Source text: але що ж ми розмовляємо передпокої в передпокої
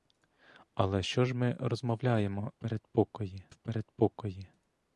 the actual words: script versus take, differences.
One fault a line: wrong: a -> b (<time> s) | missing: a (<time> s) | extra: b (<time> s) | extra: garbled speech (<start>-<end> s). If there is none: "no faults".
no faults